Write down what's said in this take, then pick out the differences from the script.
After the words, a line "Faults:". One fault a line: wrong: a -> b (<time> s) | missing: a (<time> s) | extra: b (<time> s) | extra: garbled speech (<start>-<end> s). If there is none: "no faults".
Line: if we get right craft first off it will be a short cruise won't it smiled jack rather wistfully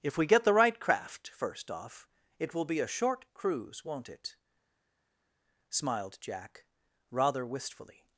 if we get the right craft first off it will be a short cruise won't it smiled jack rather wistfully
Faults:
extra: the (0.4 s)